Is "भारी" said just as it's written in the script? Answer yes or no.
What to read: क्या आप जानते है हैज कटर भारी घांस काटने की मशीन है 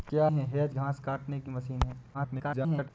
no